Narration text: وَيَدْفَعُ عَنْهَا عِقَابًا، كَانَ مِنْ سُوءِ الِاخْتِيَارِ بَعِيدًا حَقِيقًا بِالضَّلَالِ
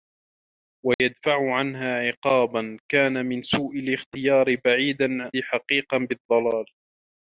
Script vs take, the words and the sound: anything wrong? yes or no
yes